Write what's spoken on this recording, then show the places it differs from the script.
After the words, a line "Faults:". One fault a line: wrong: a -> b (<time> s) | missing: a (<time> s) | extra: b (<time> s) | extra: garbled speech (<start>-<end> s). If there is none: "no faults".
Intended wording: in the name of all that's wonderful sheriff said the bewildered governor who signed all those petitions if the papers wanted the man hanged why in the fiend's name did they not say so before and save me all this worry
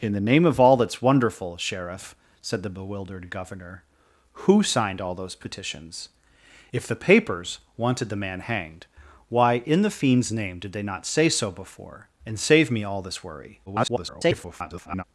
in the name of all that's wonderful sheriff said the bewildered governor who signed all those petitions if the papers wanted the man hanged why in the fiend's name did they not say so before and save me all this worry [garbled]
Faults:
extra: garbled speech (13.7-15.0 s)